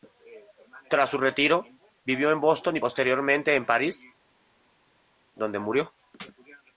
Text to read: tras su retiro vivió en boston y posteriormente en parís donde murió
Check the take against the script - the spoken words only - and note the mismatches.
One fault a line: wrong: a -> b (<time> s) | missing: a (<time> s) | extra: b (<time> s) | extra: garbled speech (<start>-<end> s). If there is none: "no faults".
no faults